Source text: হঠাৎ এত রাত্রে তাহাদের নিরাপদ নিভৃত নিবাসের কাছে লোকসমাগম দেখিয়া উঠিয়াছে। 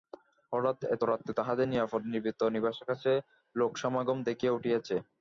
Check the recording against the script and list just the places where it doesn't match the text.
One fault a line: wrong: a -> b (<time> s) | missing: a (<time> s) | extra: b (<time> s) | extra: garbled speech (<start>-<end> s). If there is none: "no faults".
no faults